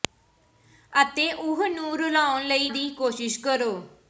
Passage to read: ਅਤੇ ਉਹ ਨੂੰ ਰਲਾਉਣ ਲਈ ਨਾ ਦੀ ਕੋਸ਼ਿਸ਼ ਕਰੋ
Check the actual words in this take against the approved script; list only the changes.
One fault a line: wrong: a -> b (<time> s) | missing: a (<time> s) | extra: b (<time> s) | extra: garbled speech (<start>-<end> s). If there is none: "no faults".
missing: ਨਾ (2.7 s)